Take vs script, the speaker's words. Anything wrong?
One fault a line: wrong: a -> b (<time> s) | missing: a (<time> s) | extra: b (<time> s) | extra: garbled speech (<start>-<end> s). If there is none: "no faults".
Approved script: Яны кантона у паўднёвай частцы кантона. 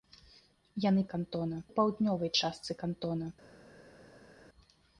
no faults